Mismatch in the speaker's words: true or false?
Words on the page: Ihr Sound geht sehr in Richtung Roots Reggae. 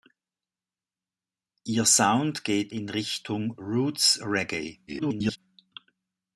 true